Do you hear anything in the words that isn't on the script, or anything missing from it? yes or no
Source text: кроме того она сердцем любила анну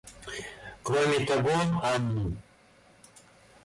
yes